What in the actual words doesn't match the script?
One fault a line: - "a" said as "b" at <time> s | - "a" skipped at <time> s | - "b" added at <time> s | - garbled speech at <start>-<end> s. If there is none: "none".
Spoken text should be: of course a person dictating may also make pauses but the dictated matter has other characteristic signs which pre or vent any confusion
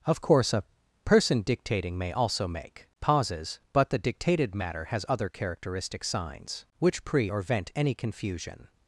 none